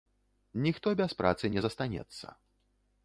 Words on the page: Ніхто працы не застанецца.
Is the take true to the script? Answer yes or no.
no